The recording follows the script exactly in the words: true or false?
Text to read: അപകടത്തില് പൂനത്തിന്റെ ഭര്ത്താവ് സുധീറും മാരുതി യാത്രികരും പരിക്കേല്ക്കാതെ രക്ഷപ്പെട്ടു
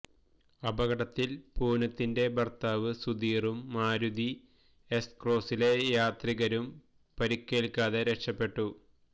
false